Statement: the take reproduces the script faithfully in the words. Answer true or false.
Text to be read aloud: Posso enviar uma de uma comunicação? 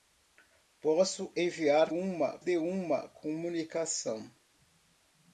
true